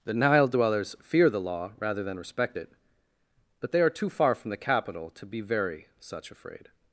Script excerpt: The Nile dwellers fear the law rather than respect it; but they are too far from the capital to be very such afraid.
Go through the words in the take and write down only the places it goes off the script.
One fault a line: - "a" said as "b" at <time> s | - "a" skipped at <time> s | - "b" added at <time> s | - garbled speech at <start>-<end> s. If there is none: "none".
none